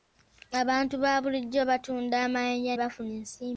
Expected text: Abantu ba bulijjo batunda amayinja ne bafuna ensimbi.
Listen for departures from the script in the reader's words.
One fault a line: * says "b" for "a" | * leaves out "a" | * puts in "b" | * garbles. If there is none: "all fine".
* leaves out "ne"